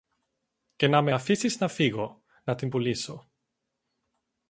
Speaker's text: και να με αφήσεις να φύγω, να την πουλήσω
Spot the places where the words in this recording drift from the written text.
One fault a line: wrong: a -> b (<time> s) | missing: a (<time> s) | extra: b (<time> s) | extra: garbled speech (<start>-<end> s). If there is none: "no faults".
no faults